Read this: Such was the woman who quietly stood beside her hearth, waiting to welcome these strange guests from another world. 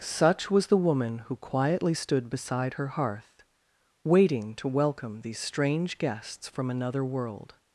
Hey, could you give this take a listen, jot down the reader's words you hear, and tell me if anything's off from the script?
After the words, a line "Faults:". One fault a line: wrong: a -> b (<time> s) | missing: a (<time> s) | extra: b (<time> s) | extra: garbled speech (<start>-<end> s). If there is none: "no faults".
Such was the woman who quietly stood beside her hearth, waiting to welcome these strange guests from another world.
Faults:
no faults